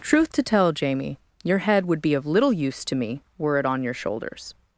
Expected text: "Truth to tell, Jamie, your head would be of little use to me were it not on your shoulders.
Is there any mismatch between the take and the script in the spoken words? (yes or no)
yes